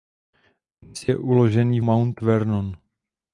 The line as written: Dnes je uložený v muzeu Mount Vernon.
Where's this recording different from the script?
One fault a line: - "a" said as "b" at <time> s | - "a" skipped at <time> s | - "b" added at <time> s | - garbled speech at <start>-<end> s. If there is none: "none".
- "muzeu" skipped at 1.9 s